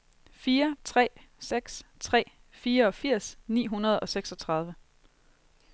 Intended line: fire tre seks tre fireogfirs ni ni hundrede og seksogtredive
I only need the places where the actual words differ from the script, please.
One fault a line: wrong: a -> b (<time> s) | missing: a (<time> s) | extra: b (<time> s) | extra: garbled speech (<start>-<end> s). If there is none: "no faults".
missing: ni (3.7 s)